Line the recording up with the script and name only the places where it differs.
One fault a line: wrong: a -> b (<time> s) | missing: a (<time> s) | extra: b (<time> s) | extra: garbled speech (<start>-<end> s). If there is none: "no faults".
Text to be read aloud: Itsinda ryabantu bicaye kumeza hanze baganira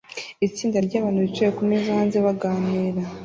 no faults